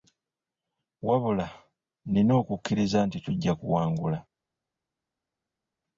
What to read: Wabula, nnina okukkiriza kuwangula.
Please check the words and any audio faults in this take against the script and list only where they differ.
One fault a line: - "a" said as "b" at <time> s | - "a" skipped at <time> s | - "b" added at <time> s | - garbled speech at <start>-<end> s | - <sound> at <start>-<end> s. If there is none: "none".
- "nti tujja" added at 3.1 s